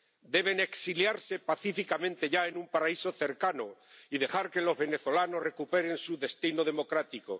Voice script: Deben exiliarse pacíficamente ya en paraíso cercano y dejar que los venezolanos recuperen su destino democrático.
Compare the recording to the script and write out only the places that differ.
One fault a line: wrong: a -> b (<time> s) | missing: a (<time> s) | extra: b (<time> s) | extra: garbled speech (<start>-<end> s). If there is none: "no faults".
extra: un (2.6 s)